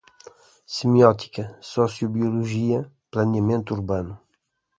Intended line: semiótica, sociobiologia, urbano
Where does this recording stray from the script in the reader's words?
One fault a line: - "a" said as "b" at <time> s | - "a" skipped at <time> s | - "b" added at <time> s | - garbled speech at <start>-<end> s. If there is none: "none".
- "planeamento" added at 3.1 s